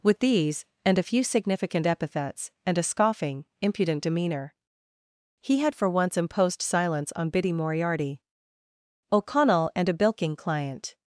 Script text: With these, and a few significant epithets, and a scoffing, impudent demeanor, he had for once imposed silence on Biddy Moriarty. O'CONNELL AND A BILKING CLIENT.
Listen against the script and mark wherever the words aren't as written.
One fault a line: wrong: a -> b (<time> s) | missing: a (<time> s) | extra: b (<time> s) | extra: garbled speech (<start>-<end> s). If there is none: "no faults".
no faults